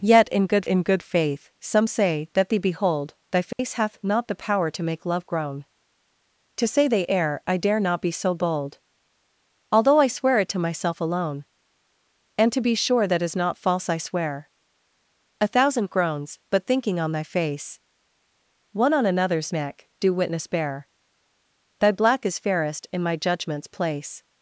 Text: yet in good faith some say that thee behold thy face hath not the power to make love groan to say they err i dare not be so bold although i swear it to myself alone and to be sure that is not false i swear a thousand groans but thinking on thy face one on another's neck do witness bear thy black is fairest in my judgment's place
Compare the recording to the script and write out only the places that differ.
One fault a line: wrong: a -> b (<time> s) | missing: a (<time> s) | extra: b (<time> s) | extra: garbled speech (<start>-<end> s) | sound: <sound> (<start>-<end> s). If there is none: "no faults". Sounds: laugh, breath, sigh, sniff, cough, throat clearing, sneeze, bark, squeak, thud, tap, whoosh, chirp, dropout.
extra: in good (0.6 s)
sound: dropout (3.5-3.6 s)